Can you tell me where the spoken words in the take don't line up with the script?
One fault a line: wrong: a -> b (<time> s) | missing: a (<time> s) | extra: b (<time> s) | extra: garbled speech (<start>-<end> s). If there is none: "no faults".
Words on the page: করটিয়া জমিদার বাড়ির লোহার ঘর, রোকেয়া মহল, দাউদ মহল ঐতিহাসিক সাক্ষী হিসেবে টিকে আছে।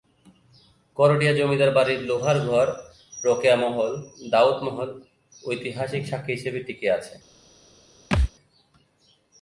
no faults